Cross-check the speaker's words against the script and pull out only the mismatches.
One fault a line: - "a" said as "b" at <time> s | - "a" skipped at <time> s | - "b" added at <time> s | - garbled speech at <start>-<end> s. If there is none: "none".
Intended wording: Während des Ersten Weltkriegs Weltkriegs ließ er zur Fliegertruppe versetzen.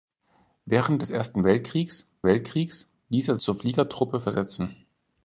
none